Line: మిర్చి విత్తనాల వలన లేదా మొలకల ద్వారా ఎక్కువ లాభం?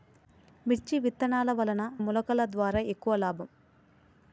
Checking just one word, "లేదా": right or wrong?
wrong